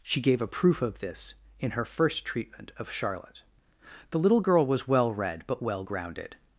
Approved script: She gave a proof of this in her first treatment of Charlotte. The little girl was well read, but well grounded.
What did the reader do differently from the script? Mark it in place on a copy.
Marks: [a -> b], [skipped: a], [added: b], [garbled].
She gave a proof of this in her first treatment of Charlotte. The little girl was well read, but well grounded.